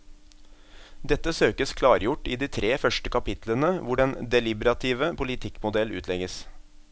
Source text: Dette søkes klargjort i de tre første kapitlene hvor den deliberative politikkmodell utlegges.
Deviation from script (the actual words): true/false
false